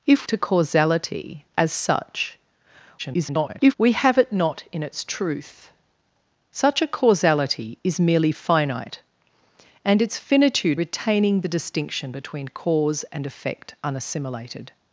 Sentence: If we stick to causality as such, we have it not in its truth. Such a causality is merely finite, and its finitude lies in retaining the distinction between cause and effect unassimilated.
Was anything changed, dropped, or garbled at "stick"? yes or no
yes